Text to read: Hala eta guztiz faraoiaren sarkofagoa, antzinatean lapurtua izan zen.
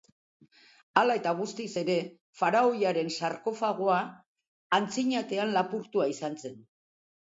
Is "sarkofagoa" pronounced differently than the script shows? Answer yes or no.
no